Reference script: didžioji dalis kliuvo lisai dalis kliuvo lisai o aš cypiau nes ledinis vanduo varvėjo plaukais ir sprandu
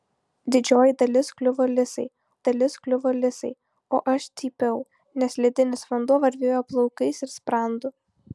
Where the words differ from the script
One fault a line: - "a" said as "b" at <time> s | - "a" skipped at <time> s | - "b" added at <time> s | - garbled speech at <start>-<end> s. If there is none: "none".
none